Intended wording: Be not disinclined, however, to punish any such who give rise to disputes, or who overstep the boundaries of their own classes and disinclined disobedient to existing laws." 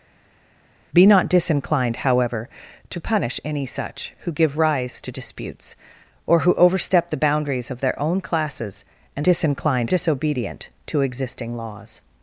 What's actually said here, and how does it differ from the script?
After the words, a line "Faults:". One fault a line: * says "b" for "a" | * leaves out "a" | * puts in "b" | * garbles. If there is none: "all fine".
Be not disinclined, however, to punish any such who give rise to disputes, or who overstep the boundaries of their own classes and disinclined disobedient to existing laws."
Faults:
all fine